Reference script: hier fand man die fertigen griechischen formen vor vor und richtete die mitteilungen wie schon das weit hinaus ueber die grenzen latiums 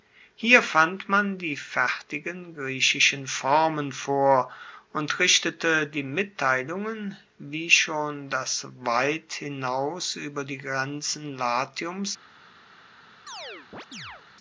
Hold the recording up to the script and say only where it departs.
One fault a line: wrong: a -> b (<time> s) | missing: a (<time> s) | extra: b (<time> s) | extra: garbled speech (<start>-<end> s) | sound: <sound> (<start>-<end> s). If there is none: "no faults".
missing: vor (4.5 s)
sound: chirp (13.3-14.2 s)